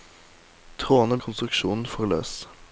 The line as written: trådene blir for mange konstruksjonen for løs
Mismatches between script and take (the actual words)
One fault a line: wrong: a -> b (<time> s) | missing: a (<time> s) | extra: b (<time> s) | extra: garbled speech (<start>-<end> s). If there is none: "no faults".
missing: blir for mange (1.2 s)